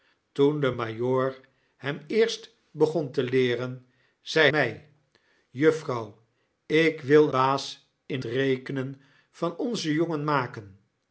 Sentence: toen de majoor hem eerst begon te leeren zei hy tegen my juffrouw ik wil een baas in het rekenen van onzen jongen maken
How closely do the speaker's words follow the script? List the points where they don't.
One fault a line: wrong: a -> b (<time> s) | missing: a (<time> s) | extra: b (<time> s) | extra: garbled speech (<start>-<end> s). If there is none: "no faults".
missing: hy tegen (4.5 s)
missing: een (7.3 s)
missing: het (8.2 s)